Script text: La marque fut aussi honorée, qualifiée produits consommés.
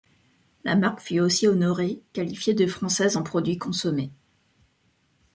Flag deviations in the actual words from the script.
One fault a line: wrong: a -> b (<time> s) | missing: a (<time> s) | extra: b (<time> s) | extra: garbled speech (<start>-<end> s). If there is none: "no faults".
extra: de française en (2.5 s)